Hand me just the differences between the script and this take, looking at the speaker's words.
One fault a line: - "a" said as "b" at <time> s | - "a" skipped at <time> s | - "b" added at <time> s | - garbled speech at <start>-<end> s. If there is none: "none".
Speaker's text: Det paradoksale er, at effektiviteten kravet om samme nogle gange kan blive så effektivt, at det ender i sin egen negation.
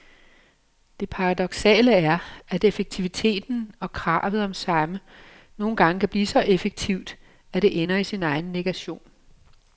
- "og" added at 3.8 s